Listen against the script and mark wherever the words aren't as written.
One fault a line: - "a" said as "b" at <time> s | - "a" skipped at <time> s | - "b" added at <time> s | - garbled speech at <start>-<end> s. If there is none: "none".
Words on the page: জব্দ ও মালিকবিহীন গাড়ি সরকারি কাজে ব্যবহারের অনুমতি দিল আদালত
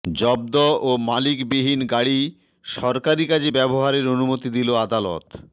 none